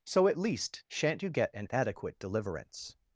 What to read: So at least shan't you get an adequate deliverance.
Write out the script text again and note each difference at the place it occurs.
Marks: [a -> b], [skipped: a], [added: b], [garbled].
So at least shan't you get an adequate deliverance.